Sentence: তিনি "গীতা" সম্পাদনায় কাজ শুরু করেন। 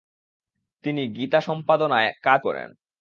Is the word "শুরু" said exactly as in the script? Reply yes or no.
no